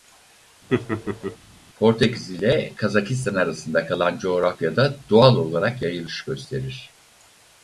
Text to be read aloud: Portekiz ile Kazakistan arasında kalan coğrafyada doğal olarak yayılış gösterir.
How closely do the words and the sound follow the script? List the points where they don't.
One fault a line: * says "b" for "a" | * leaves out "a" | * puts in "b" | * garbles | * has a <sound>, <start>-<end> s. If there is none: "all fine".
* has a laugh, 0.7-1.4 s